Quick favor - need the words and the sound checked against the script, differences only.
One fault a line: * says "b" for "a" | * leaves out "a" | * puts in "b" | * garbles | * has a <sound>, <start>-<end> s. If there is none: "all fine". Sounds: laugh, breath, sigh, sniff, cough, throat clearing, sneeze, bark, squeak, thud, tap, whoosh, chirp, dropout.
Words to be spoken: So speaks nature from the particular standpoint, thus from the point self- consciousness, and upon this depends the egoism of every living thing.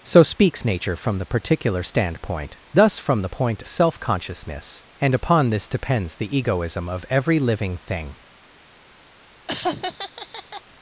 * has a laugh, 9.5-10.6 s